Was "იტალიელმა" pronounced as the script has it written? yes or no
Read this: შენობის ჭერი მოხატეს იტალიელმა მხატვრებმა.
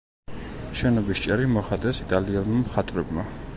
yes